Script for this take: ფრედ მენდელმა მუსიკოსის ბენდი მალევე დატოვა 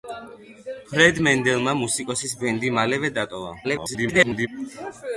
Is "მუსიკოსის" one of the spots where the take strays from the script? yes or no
no